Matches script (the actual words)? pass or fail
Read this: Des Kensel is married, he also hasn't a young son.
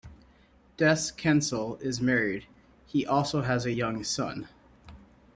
fail